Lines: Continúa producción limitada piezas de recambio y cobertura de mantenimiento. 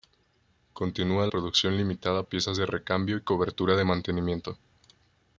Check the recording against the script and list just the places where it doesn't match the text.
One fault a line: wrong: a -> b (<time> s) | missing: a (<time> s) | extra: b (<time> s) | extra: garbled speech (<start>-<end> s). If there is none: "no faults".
no faults